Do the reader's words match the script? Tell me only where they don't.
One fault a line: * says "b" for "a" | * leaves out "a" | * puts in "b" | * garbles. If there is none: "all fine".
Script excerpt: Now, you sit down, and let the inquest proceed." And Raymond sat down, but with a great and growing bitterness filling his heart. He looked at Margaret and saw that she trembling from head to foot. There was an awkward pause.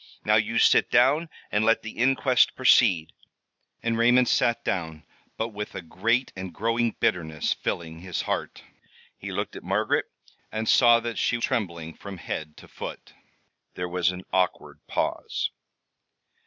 all fine